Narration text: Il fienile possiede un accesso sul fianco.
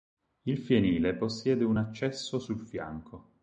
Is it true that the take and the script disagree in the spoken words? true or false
false